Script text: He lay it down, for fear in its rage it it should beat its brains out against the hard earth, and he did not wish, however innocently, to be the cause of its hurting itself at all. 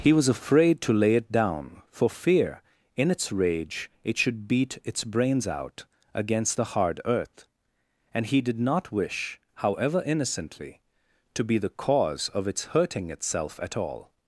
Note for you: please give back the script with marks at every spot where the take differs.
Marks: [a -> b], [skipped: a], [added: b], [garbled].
He [added: was afraid to] lay it down, for fear in its rage it [skipped: it] should beat its brains out against the hard earth, and he did not wish, however innocently, to be the cause of its hurting itself at all.